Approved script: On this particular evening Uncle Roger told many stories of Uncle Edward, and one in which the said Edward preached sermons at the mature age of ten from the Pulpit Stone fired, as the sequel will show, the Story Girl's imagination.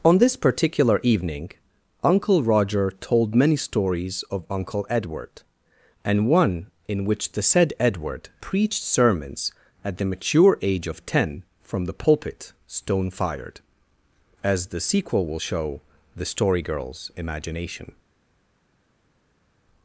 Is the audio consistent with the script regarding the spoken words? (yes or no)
yes